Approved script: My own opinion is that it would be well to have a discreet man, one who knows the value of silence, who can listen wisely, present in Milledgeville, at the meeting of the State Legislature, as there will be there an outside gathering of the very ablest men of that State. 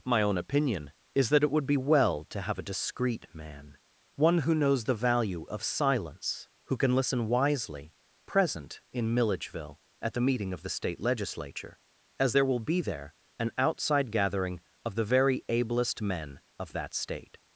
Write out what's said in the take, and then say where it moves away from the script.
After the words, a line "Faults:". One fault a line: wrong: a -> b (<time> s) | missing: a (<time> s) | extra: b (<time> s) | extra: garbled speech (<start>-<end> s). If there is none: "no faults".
My own opinion is that it would be well to have a discreet man, one who knows the value of silence, who can listen wisely, present in Milledgeville, at the meeting of the State Legislature, as there will be there an outside gathering of the very ablest men of that State.
Faults:
no faults